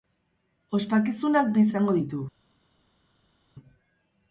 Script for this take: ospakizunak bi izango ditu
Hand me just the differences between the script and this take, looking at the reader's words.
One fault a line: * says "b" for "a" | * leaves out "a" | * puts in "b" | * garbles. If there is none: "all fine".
all fine